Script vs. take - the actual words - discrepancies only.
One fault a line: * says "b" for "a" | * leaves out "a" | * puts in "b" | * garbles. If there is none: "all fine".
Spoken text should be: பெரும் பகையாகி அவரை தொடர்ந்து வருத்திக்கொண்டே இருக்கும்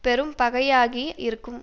* leaves out "அவரை தொடர்ந்து வருத்திக்கொண்டே"